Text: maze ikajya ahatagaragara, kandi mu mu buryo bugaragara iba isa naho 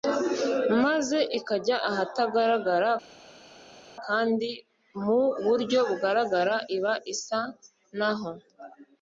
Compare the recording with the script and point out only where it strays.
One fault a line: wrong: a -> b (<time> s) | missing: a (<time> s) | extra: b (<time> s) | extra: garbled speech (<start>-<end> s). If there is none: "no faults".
missing: mu (5.2 s)